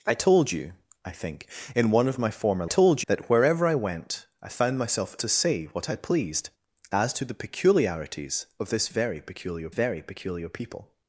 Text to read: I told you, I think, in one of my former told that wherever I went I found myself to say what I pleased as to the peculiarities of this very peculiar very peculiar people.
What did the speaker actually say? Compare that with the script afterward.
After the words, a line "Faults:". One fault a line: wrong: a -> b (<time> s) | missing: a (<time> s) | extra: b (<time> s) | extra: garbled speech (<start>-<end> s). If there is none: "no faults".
I told you, I think, in one of my former told that wherever I went I found myself to say what I pleased as to the peculiarities of this very peculiar very peculiar people.
Faults:
no faults